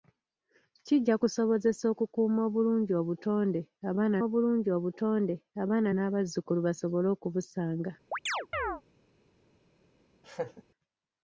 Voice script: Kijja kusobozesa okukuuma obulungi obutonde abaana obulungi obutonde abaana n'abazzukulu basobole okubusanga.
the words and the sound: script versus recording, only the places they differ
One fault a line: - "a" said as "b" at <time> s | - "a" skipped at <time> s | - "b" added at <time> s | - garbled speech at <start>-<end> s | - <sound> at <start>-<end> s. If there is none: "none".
- chirp at 8.1-8.8 s
- laugh at 10.2-10.6 s